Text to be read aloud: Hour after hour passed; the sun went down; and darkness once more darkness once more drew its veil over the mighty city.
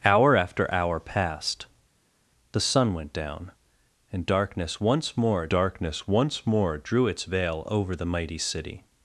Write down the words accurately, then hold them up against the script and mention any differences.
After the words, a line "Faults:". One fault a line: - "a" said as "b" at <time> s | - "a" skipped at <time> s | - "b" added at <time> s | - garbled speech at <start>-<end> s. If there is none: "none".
Hour after hour passed; the sun went down; and darkness once more darkness once more drew its veil over the mighty city.
Faults:
none